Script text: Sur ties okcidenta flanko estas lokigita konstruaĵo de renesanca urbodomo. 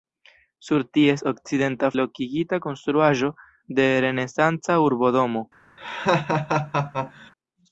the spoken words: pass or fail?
fail